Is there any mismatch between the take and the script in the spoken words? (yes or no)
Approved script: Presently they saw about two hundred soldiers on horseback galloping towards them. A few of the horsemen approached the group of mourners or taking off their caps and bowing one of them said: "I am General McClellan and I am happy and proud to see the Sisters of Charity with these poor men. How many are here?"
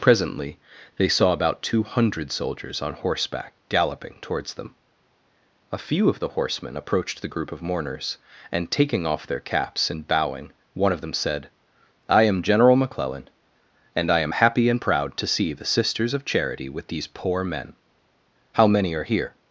yes